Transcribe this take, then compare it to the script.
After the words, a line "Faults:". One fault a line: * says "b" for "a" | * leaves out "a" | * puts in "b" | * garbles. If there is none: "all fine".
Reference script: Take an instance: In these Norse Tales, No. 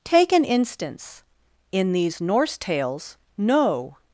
Take an instance: In these Norse Tales, No.
Faults:
all fine